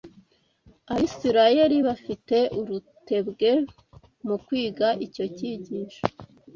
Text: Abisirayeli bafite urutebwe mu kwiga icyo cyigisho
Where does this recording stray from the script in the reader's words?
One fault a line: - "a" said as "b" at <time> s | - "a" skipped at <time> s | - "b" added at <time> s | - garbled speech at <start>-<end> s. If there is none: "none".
none